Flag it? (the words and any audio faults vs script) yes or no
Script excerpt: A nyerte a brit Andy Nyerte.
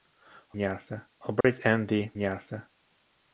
yes